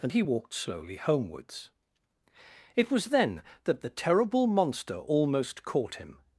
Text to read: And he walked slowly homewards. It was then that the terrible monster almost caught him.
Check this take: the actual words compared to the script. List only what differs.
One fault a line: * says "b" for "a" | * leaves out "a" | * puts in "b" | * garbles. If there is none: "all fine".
all fine